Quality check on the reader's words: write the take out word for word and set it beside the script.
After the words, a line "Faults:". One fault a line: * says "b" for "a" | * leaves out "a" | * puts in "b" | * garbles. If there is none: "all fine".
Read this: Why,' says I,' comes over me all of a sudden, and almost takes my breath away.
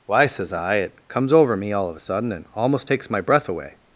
Why,' says I,' it comes over me all of a sudden, and almost takes my breath away.
Faults:
* puts in "it"